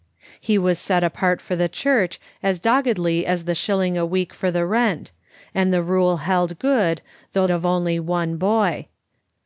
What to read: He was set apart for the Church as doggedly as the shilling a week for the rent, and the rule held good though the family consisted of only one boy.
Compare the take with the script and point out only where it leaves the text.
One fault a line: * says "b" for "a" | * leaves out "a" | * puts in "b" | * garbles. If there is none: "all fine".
* leaves out "the family consisted"